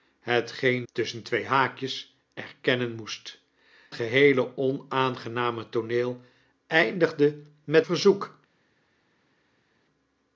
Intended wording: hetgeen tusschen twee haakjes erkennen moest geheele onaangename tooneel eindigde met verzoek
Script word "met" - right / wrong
right